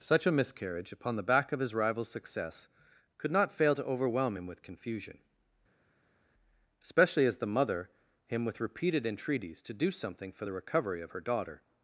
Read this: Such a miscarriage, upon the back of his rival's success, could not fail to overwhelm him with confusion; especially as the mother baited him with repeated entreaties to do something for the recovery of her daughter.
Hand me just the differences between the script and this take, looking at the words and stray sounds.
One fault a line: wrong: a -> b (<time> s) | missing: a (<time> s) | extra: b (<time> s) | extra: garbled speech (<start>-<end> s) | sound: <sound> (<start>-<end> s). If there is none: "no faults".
missing: baited (7.9 s)